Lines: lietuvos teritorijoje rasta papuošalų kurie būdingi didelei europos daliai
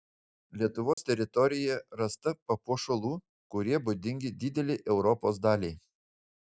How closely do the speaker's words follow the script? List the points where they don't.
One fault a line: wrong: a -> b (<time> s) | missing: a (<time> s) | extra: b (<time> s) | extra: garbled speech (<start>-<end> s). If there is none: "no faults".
no faults